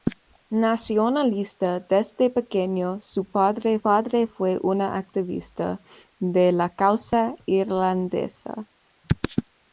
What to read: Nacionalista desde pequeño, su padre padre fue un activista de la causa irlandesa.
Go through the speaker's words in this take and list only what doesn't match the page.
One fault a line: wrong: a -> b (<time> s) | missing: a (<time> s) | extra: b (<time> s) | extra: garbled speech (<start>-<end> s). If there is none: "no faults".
no faults